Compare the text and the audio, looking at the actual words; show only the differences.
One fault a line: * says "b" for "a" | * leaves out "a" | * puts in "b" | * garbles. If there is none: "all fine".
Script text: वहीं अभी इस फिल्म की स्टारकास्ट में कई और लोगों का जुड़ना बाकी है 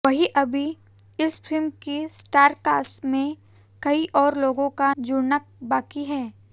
all fine